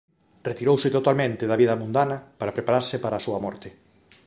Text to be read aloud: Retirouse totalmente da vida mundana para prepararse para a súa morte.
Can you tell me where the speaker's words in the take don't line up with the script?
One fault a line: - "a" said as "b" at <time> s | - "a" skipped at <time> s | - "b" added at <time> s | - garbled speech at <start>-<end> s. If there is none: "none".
none